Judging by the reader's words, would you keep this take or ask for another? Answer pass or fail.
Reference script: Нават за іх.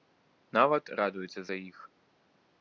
fail